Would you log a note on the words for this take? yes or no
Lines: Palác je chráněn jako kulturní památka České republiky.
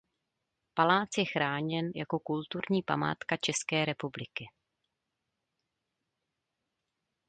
no